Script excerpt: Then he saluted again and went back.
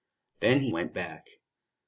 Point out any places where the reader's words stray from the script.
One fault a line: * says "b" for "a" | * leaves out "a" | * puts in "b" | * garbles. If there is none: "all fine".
* leaves out "saluted again and"